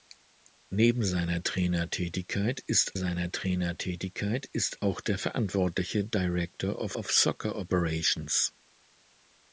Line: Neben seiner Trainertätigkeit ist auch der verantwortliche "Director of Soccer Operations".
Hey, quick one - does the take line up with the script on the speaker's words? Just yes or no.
no